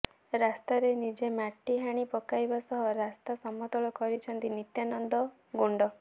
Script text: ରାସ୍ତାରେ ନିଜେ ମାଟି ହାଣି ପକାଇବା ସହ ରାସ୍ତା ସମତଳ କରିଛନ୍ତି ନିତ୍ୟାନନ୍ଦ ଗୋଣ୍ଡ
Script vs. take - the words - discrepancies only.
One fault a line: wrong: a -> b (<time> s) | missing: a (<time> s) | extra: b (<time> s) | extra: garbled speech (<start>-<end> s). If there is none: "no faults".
no faults